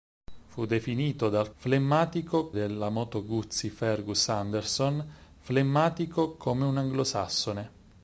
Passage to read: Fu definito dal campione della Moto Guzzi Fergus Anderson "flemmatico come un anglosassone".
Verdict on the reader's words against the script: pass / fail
fail